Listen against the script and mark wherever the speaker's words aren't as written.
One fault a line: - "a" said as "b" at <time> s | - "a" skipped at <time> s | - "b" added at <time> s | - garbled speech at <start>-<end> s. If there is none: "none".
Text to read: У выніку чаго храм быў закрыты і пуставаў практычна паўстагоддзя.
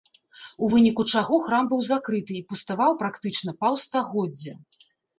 none